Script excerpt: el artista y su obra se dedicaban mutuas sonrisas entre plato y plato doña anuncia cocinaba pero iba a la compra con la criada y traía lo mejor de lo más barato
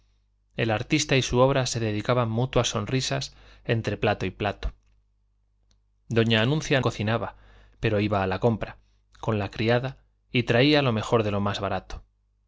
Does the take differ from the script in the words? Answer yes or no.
no